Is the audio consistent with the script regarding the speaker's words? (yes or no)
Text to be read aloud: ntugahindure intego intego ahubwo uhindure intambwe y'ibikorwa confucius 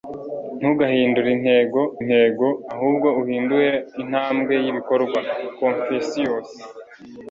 yes